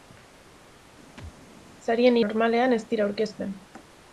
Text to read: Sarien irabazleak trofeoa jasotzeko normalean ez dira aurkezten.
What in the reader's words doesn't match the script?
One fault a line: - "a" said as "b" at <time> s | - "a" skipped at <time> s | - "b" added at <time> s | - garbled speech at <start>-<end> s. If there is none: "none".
- "irabazleak trofeoa jasotzeko" skipped at 2.2 s